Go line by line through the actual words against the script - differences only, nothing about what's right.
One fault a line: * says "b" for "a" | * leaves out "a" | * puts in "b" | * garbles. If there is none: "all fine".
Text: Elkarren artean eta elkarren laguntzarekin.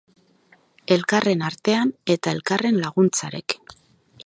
all fine